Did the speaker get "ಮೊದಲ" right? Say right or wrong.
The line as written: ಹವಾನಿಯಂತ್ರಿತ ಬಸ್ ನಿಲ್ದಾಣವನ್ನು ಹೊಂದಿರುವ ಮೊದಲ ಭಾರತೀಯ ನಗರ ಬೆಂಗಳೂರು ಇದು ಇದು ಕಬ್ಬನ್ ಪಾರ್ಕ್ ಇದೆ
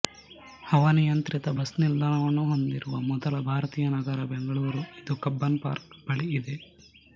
right